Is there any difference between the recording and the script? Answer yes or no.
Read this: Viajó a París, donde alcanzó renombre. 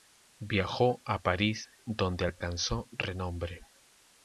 no